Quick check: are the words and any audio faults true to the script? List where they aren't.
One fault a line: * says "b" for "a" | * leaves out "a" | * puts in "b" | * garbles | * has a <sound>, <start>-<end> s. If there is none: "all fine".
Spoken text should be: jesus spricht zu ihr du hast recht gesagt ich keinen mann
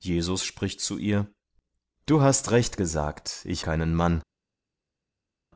all fine